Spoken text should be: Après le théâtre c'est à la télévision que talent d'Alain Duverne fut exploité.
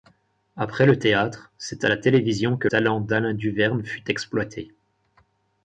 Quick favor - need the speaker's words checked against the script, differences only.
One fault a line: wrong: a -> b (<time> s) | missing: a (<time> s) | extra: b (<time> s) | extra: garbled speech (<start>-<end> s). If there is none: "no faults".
no faults